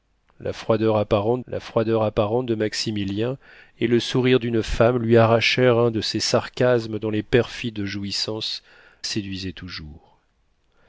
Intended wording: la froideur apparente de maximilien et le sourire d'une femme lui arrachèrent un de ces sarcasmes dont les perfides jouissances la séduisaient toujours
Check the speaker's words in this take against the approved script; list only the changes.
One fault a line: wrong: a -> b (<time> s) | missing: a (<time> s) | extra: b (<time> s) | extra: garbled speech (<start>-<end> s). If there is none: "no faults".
extra: la froideur apparente (1.5 s)
missing: la (8.6 s)